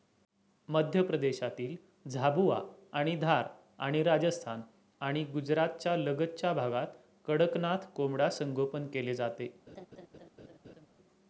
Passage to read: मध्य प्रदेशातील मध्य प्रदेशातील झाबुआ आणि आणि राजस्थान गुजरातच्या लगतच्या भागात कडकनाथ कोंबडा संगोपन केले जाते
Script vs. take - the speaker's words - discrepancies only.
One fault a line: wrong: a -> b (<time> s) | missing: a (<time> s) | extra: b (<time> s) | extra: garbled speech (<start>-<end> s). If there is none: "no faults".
missing: मध्य प्रदेशातील (1.8 s)
extra: धार (3.1 s)
extra: आणि (5.0 s)